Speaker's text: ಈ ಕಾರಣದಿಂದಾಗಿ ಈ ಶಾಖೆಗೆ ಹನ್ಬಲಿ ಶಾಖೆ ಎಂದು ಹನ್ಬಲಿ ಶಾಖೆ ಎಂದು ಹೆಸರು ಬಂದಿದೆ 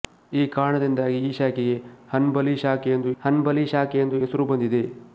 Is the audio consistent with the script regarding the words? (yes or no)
yes